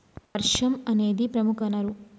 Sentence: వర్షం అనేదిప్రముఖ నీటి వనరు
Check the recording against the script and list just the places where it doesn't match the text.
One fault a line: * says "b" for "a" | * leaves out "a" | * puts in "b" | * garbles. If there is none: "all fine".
* leaves out "నీటి"